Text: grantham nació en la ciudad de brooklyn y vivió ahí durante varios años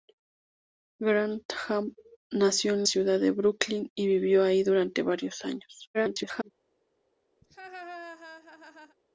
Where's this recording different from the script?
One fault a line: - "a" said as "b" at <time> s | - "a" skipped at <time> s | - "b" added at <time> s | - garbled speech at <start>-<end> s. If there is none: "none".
- "la" skipped at 2.9 s
- garbled speech at 5.9-6.5 s